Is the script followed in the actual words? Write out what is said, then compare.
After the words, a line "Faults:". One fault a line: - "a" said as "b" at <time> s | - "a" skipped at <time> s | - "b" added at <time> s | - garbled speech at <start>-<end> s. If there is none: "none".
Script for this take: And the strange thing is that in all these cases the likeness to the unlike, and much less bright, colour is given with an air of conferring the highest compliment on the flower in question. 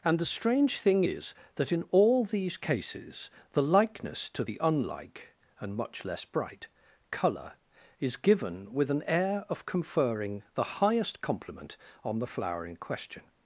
And the strange thing is that in all these cases the likeness to the unlike, and much less bright, colour is given with an air of conferring the highest compliment on the flower in question.
Faults:
none